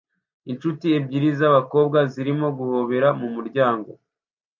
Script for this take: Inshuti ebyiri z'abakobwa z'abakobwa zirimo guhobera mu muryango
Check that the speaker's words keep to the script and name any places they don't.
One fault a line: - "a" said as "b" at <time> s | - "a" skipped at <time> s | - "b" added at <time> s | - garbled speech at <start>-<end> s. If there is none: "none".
- "z'abakobwa" skipped at 2.0 s